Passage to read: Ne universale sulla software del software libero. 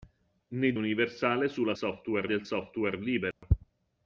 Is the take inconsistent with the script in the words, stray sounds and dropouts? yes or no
yes